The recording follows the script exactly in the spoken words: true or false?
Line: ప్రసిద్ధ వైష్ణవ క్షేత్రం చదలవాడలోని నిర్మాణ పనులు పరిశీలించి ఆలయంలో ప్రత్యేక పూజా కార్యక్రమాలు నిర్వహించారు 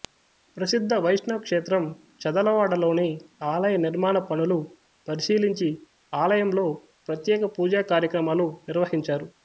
false